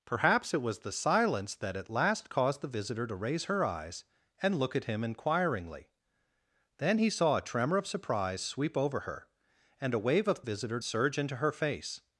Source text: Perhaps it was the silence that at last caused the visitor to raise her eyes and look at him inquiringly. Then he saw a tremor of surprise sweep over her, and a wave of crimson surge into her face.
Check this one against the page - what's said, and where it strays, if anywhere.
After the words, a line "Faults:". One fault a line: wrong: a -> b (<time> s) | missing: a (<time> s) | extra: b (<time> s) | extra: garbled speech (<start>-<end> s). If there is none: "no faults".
Perhaps it was the silence that at last caused the visitor to raise her eyes and look at him inquiringly. Then he saw a tremor of surprise sweep over her, and a wave of visitor surge into her face.
Faults:
wrong: crimson -> visitor (10.4 s)